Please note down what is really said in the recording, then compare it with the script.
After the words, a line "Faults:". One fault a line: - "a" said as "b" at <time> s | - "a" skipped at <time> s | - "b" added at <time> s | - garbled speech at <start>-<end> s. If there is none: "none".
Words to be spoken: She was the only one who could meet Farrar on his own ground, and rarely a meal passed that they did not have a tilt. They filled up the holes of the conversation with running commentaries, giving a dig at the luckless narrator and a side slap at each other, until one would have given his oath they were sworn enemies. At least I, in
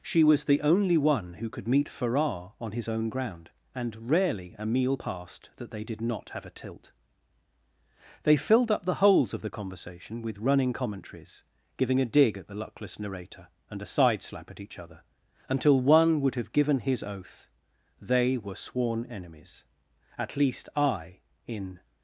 She was the only one who could meet Farrar on his own ground, and rarely a meal passed that they did not have a tilt. They filled up the holes of the conversation with running commentaries, giving a dig at the luckless narrator and a side slap at each other, until one would have given his oath they were sworn enemies. At least I, in
Faults:
none